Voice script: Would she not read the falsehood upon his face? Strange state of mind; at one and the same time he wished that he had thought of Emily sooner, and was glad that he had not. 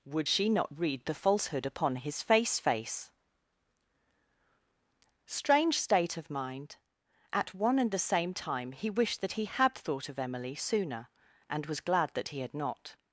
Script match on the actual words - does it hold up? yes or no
no